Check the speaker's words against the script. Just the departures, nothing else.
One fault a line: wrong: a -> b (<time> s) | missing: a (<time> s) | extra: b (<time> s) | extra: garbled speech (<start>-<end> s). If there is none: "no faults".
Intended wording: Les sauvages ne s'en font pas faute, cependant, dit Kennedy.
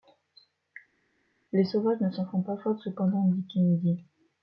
no faults